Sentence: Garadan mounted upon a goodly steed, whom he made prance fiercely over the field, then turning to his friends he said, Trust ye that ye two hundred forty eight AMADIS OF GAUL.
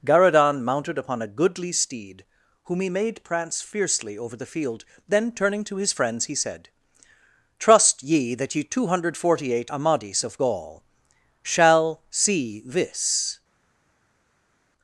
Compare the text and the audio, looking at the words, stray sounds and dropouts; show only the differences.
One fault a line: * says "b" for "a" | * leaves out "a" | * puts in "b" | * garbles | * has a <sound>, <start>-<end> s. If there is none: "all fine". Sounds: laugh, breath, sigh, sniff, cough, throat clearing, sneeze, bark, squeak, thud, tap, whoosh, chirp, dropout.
* puts in "shall see this"